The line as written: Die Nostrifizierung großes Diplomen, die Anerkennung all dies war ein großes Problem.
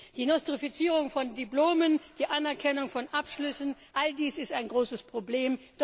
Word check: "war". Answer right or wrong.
wrong